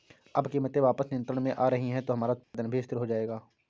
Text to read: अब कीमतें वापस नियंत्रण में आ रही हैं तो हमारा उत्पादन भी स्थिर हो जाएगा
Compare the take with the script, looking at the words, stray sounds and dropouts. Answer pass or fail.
fail